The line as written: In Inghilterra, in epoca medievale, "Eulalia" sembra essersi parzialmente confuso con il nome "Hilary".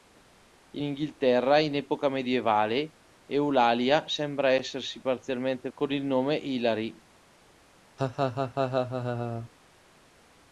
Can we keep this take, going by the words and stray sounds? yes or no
no